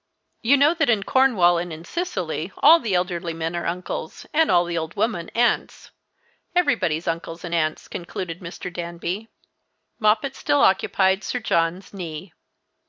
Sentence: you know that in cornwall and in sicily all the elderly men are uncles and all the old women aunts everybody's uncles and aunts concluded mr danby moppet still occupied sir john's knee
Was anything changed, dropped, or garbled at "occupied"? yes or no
no